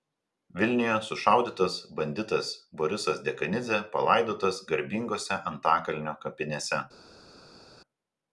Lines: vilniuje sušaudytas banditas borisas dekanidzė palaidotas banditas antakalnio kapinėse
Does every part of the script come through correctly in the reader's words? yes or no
no